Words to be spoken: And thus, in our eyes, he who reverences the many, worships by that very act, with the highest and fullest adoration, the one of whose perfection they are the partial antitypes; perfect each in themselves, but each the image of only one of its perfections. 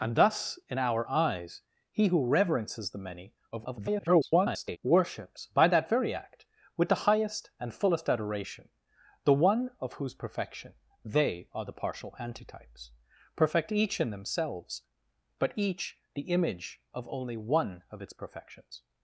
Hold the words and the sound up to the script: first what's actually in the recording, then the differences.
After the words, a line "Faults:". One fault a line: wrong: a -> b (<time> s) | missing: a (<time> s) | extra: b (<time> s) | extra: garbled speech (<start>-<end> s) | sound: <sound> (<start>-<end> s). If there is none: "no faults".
And thus, in our eyes, he who reverences the many, [garbled] worships by that very act, with the highest and fullest adoration, the one of whose perfection they are the partial antitypes; perfect each in themselves, but each the image of only one of its perfections.
Faults:
extra: garbled speech (3.5-4.8 s)